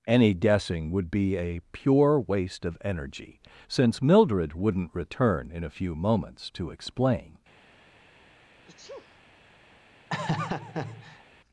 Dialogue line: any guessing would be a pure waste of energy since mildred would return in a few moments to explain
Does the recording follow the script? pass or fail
fail